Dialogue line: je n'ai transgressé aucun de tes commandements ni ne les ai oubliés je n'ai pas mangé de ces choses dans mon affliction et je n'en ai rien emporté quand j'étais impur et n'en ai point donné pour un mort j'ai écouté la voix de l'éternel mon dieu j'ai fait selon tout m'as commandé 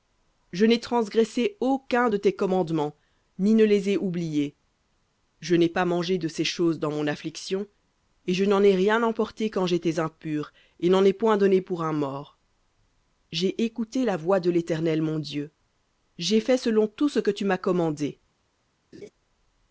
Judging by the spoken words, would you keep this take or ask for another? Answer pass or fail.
fail